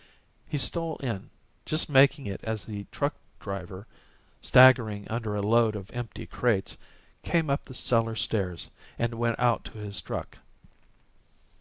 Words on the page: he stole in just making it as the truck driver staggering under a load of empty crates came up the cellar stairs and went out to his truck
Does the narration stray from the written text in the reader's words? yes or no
no